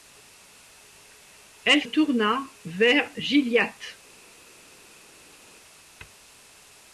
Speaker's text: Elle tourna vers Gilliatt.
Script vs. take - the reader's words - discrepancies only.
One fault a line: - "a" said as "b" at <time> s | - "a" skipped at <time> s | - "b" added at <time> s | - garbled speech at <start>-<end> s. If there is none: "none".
none